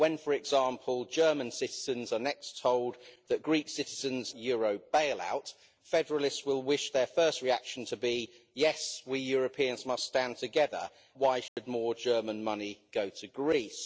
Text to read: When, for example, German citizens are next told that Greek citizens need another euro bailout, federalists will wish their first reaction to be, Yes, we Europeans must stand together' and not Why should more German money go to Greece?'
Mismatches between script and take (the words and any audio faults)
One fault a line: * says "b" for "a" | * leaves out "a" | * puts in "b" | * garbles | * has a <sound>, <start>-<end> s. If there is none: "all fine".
* leaves out "need another"
* leaves out "and not"
* has a dropout, 11.5-11.6 s